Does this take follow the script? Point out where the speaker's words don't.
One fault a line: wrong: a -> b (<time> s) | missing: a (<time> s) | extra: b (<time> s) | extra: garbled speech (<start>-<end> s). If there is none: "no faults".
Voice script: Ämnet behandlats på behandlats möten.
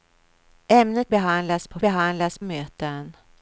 no faults